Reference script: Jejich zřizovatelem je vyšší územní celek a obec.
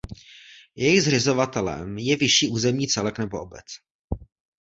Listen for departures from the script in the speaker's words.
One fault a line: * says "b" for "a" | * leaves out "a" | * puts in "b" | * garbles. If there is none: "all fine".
* says "nebo" for "a"